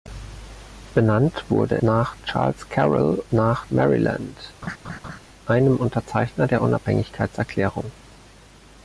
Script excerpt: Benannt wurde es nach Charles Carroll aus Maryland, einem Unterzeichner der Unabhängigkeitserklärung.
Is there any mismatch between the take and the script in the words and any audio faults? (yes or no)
yes